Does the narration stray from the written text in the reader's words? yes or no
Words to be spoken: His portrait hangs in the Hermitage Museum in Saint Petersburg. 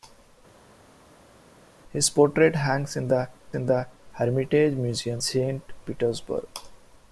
yes